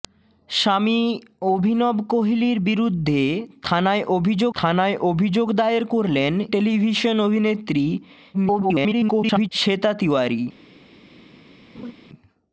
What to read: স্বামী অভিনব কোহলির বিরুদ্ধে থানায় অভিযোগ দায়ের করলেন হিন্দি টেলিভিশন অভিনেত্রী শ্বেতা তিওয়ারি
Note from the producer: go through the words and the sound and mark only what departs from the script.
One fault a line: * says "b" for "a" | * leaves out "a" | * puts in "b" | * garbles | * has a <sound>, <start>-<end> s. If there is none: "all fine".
* puts in "থানায় অভিযোগ"
* leaves out "হিন্দি"
* garbles
* has a laugh, 11.7-11.9 s